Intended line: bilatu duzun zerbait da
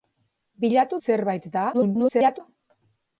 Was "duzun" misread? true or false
true